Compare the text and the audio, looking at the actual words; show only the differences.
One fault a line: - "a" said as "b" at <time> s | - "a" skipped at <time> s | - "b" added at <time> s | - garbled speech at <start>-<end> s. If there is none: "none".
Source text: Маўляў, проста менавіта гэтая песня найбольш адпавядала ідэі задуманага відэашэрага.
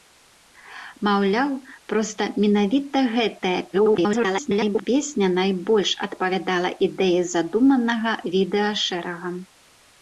- garbled speech at 3.7-4.9 s